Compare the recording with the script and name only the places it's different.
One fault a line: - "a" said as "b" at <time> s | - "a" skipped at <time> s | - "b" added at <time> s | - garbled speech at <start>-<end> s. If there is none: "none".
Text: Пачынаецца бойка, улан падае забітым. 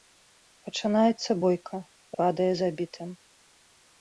- "улан" skipped at 1.8 s